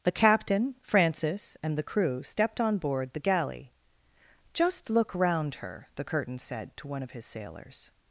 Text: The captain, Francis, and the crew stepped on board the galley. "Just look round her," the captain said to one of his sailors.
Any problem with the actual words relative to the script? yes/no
yes